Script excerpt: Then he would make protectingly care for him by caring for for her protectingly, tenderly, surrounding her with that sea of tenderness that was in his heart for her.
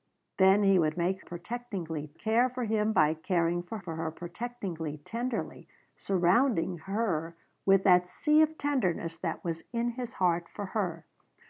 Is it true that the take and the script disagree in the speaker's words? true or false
false